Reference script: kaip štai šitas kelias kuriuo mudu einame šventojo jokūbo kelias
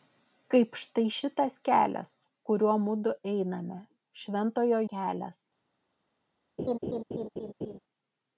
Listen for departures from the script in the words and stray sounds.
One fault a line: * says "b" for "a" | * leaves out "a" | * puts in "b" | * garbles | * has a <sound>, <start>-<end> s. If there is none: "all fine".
* leaves out "jokūbo"
* has a laugh, 6.6-7.8 s